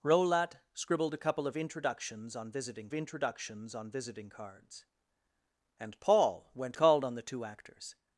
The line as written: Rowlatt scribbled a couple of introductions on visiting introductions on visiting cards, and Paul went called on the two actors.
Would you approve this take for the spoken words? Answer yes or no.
yes